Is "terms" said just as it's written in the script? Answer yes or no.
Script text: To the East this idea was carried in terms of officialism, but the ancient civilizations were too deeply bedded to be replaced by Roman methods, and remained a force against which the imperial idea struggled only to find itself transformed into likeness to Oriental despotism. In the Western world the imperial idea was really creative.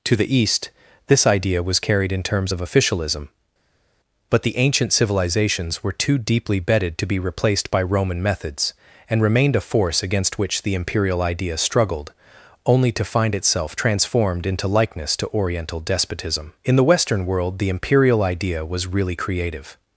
yes